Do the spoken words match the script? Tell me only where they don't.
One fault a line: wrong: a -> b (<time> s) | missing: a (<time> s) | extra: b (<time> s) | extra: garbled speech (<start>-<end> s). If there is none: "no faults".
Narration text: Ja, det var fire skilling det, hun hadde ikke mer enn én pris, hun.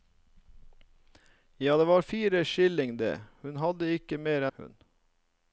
missing: enn én pris (4.5 s)